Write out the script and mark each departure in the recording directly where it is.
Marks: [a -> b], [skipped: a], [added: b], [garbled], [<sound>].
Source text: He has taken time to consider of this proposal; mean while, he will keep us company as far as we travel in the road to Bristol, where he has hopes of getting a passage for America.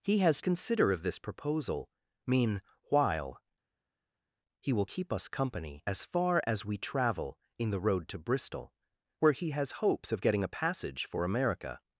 He has [skipped: taken time to] consider of this proposal; mean while, he will keep us company as far as we travel in the road to Bristol, where he has hopes of getting a passage for America.